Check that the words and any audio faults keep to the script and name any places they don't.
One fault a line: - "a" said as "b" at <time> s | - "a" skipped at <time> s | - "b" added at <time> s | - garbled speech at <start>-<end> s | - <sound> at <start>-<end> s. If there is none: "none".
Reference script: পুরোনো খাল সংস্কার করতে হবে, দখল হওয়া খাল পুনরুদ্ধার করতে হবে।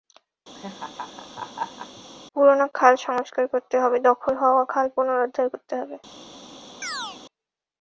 - laugh at 0.5-2.0 s
- chirp at 6.8-7.2 s